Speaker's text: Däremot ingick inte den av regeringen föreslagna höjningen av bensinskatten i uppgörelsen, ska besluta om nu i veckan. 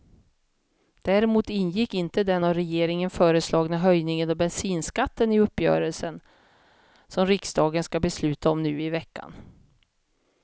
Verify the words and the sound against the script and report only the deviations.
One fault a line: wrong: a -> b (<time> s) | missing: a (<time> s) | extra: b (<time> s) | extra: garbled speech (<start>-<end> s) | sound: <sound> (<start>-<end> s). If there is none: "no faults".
extra: som riksdagen (7.1 s)